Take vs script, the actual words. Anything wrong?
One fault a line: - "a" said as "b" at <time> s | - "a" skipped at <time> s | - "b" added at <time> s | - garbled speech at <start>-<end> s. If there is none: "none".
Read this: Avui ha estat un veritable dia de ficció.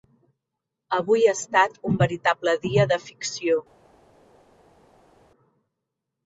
none